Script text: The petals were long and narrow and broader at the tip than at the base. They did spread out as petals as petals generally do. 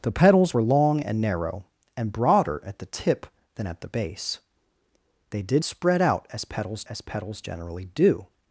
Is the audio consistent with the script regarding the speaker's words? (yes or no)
yes